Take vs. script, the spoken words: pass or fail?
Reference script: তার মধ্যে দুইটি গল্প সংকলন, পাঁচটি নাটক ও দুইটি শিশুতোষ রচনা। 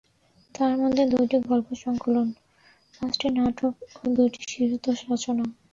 pass